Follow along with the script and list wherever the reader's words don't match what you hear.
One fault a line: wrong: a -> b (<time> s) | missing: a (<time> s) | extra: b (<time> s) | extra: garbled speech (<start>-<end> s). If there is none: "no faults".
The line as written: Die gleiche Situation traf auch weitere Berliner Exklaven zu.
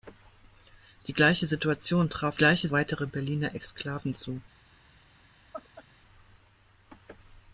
wrong: auch -> gleiche (2.3 s)